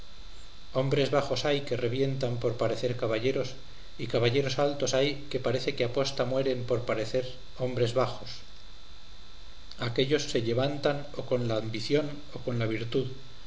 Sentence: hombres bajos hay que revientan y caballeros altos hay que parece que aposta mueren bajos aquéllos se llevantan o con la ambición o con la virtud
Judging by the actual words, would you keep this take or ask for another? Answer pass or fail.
fail